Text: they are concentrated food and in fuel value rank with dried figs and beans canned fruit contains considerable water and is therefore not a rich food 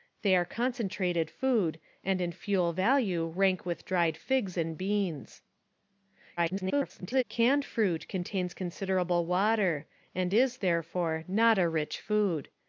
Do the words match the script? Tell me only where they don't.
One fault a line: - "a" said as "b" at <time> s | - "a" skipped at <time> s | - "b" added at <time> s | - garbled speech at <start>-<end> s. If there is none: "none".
- garbled speech at 6.4-7.2 s